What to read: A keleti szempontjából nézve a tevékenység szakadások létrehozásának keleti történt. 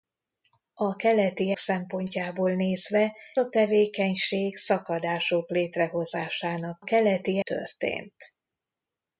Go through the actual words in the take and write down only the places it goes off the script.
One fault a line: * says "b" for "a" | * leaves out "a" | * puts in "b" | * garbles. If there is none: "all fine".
all fine